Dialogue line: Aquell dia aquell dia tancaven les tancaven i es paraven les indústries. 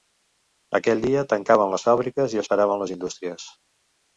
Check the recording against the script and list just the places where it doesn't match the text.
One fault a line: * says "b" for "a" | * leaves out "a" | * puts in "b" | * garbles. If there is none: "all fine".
* leaves out "aquell dia"
* says "fàbriques" for "tancaven"